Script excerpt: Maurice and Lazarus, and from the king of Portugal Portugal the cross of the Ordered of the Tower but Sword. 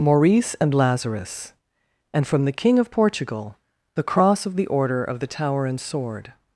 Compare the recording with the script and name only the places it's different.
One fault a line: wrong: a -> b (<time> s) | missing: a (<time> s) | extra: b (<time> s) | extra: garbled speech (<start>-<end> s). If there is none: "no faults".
missing: Portugal (3.6 s)
wrong: Ordered -> Order (4.7 s)
wrong: but -> and (5.7 s)